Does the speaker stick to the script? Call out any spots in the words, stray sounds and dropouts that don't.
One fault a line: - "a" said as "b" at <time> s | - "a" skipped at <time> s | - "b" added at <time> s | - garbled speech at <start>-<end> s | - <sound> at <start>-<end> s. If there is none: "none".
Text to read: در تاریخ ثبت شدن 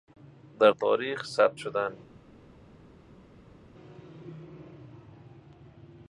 none